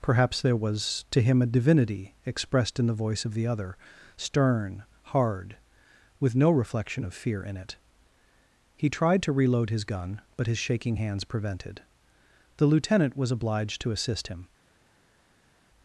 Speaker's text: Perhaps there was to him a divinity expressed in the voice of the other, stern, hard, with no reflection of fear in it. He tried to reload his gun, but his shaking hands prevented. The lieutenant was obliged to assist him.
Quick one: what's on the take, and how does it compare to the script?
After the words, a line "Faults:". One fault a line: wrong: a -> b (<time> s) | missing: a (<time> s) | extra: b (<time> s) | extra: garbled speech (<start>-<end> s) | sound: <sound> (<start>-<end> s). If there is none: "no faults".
Perhaps there was to him a divinity expressed in the voice of the other, stern, hard, with no reflection of fear in it. He tried to reload his gun, but his shaking hands prevented. The lieutenant was obliged to assist him.
Faults:
no faults